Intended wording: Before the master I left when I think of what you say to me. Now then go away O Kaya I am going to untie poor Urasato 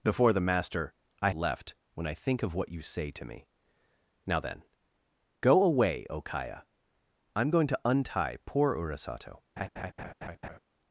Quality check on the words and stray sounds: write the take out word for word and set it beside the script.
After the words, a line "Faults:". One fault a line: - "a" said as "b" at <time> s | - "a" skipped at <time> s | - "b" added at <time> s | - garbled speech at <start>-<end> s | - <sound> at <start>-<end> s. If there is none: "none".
Before the master I left when I think of what you say to me. Now then go away O Kaya I am going to untie poor Urasato
Faults:
- laugh at 9.6-10.6 s